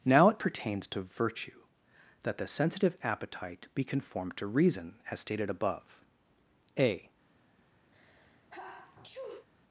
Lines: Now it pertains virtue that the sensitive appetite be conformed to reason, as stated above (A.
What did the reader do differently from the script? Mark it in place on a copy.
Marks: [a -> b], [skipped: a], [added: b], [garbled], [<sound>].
Now it pertains [added: to] virtue that the sensitive appetite be conformed to reason, as stated above (A. [sneeze]